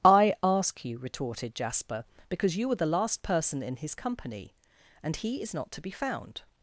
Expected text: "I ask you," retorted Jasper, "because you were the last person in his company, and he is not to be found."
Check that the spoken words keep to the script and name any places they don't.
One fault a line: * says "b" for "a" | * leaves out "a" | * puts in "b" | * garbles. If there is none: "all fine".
all fine